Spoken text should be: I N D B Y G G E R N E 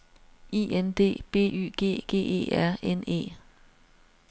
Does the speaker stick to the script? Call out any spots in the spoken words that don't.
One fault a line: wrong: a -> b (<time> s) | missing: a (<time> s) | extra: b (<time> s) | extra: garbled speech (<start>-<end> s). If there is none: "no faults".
no faults